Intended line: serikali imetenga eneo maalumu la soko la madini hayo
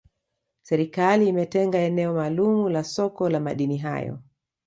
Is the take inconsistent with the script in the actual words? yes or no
no